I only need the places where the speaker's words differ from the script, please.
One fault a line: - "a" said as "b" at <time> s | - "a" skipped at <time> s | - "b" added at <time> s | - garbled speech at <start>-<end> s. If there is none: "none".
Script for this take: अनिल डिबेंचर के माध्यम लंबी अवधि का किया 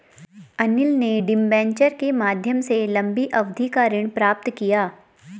- "ने" added at 0.9 s
- "से" added at 2.6 s
- "ऋण प्राप्त" added at 3.9 s